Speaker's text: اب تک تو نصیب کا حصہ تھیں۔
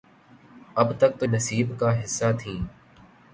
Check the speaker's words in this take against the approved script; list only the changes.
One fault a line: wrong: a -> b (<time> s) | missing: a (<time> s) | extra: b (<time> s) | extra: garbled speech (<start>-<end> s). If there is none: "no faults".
no faults